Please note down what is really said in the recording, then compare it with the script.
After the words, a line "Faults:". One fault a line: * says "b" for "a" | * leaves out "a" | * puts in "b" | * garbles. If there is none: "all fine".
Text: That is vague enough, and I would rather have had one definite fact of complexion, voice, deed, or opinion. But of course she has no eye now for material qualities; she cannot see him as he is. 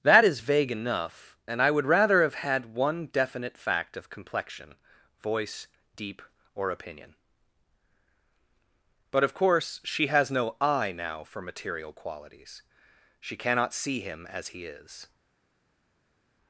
That is vague enough, and I would rather have had one definite fact of complexion, voice, deep, or opinion. But of course she has no eye now for material qualities; she cannot see him as he is.
Faults:
* says "deep" for "deed"